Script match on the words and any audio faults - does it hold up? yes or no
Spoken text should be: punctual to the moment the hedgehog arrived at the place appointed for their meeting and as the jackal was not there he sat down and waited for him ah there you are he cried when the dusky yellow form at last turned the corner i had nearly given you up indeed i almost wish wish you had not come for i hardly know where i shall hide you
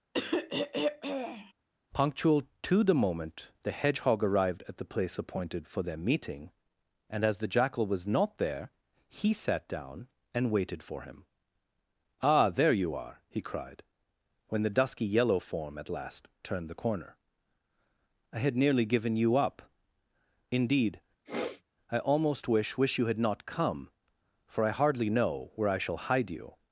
no